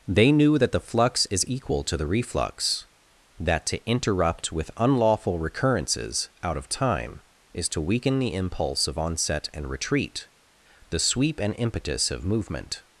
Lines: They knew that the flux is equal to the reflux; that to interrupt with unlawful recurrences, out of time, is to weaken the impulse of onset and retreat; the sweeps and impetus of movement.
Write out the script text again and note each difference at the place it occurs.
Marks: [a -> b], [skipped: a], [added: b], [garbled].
They knew that the flux is equal to the reflux; that to interrupt with unlawful recurrences, out of time, is to weaken the impulse of onset and retreat; the [sweeps -> sweep] and impetus of movement.